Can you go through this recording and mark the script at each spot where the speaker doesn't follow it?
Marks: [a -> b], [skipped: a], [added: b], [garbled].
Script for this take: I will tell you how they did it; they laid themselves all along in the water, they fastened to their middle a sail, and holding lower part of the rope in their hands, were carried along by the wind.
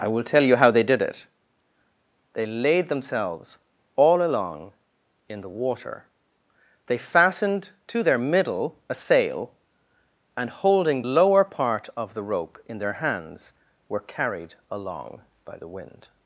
I will tell you how they did it; they laid themselves all along in the water, they fastened to their middle a sail, and holding lower part of the rope in their hands, were carried along by the wind.